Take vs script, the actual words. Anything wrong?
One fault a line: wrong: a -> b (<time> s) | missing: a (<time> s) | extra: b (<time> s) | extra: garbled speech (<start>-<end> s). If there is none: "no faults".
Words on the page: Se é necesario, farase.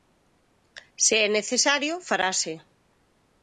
no faults